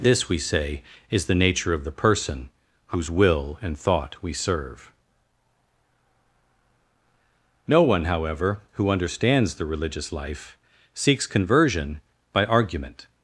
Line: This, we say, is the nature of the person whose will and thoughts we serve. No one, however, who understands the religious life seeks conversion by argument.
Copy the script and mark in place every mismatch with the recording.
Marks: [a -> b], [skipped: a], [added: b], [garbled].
This, we say, is the nature of the person whose will and [thoughts -> thought] we serve. No one, however, who understands the religious life seeks conversion by argument.